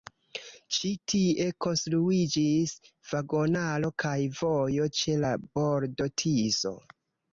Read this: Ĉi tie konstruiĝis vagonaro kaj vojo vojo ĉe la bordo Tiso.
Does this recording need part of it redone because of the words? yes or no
yes